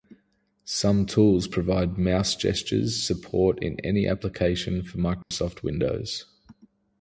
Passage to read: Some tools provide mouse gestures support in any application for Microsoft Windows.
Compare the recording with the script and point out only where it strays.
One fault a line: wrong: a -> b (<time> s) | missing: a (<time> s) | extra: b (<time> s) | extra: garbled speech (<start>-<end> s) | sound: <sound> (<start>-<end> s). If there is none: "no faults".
sound: dropout (5.2-5.3 s)